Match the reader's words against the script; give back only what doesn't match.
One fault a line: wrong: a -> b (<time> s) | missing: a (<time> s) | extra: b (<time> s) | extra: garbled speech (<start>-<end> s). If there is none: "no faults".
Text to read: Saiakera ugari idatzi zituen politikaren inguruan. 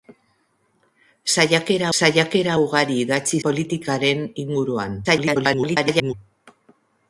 extra: saiakera (2.0 s)
missing: zituen (3.4 s)
extra: garbled speech (5.0-6.1 s)